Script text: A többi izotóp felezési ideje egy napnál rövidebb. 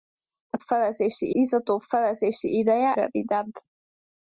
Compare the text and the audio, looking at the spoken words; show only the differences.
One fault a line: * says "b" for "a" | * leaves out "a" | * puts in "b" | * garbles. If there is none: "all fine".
* says "felezési" for "többi"
* leaves out "egy napnál"